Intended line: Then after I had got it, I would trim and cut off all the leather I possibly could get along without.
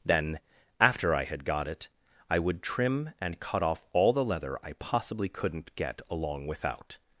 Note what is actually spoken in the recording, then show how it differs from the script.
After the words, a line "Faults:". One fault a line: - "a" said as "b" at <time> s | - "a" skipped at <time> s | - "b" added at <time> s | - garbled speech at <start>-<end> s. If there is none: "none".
Then after I had got it, I would trim and cut off all the leather I possibly couldn't get along without.
Faults:
- "could" said as "couldn't" at 5.3 s